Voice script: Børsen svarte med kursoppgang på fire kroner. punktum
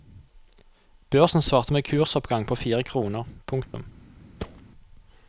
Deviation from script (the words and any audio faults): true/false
true